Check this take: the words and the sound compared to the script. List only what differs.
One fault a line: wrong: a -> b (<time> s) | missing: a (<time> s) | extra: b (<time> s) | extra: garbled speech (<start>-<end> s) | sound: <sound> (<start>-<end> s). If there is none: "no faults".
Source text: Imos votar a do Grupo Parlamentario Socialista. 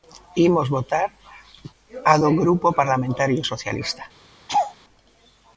sound: laugh (4.5-4.7 s)